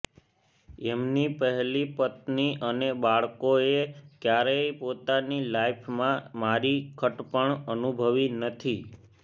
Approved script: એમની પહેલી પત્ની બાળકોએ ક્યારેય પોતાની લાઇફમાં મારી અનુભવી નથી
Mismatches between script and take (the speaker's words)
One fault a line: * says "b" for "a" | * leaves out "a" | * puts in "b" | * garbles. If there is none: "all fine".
* puts in "અને"
* puts in "ખટપણ"